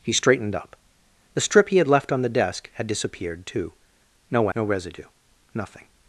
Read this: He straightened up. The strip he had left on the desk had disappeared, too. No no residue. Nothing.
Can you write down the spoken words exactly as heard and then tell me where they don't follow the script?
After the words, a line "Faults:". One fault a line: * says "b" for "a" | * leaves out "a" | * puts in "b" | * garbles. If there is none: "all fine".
He straightened up. The strip he had left on the desk had disappeared, too. No no residue. Nothing.
Faults:
all fine